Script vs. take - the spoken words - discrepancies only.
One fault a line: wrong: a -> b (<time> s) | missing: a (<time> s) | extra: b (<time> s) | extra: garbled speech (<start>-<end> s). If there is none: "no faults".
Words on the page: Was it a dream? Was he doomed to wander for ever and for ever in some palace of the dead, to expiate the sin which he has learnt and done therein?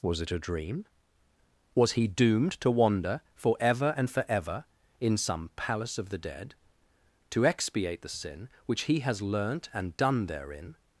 no faults